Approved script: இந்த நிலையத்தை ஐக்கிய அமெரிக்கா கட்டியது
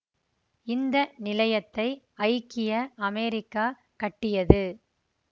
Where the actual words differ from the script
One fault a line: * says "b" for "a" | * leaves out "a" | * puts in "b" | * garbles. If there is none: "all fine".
all fine